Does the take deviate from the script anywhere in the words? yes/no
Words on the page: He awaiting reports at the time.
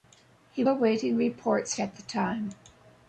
no